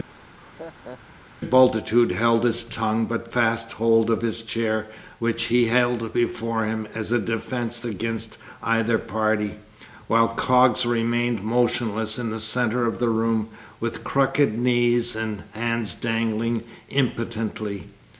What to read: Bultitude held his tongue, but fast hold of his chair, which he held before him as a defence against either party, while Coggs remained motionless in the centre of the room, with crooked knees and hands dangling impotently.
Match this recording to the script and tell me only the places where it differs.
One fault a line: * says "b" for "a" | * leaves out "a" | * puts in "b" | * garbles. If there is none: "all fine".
all fine